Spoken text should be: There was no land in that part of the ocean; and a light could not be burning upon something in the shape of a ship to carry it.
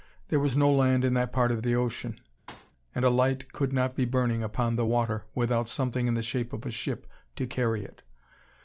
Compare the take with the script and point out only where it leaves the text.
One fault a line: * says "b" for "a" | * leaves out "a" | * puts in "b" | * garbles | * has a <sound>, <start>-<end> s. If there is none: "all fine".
* has a thud, 2.5-2.7 s
* puts in "the water without"